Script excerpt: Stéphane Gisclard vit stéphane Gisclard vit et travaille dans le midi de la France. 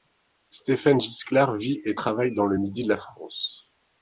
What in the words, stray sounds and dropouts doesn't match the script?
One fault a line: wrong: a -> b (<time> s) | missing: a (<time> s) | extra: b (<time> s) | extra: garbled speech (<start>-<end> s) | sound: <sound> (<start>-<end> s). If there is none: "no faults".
missing: stéphane Gisclard vit (1.8 s)